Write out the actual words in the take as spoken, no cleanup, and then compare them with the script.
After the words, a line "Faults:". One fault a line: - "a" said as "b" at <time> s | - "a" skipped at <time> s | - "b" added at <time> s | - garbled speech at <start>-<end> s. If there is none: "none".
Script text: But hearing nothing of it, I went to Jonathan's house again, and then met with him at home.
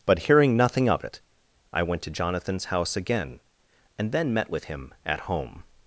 But hearing nothing of it, I went to Jonathan's house again, and then met with him at home.
Faults:
none